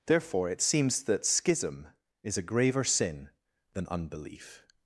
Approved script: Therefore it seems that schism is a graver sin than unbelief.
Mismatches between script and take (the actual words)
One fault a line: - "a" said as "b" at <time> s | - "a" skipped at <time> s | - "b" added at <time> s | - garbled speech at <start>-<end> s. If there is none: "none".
none